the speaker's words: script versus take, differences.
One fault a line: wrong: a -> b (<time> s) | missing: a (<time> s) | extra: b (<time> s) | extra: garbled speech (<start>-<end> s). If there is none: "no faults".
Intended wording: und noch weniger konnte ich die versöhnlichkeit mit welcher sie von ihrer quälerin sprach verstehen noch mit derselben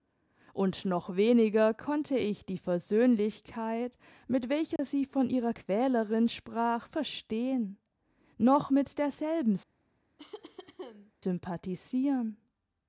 no faults